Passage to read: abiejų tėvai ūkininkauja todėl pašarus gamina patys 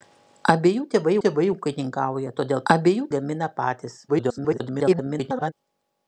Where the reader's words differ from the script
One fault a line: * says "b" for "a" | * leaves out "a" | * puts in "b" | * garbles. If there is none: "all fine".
* puts in "tėvai"
* says "abiejų" for "pašarus"
* garbles